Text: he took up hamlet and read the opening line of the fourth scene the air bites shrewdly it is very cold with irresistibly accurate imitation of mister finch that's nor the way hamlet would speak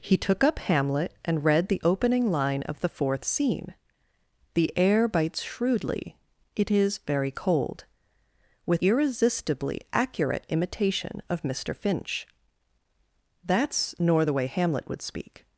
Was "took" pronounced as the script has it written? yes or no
yes